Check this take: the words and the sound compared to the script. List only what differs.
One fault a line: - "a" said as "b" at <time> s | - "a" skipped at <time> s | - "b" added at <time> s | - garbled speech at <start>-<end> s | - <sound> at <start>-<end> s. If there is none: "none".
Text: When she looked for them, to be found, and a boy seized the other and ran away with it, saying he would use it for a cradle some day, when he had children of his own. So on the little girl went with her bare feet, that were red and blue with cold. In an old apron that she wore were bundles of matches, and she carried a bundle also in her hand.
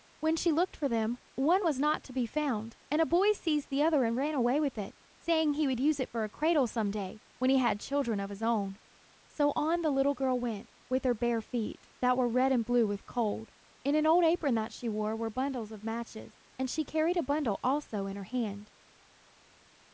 - "one was not" added at 1.4 s